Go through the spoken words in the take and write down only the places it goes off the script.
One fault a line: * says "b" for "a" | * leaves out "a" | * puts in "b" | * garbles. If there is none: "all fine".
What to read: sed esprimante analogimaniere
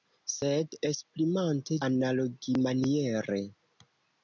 all fine